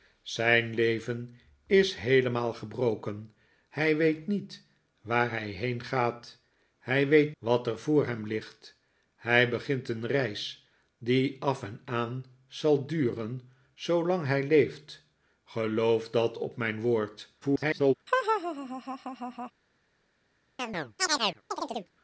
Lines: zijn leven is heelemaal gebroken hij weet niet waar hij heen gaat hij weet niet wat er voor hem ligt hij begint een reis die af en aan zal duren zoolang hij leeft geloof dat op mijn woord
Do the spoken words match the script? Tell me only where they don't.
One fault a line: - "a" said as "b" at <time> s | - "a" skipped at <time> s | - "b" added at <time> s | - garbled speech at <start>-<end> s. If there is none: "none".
- "niet" skipped at 7.3 s
- garbled speech at 17.4-17.9 s